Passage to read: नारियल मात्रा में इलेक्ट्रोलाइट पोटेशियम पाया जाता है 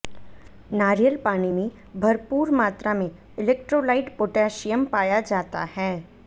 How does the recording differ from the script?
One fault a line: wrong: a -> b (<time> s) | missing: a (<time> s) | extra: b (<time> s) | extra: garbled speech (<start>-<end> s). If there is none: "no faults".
extra: पानी में भरपूर (1.2 s)